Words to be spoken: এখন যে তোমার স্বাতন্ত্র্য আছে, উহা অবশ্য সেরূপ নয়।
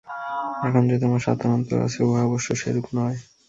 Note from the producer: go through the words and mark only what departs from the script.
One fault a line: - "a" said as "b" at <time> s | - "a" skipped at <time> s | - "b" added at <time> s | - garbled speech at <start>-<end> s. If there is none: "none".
none